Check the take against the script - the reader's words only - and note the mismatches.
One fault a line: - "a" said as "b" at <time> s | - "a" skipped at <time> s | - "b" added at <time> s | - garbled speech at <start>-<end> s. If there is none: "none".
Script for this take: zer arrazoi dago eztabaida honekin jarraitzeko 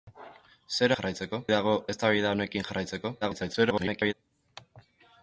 - "arrazoi" said as "jarraitzeko" at 1.0 s
- garbled speech at 3.2-4.1 s